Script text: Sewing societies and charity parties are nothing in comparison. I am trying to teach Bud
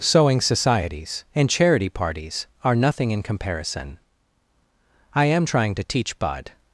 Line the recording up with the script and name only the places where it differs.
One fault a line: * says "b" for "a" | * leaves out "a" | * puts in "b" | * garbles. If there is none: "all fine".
all fine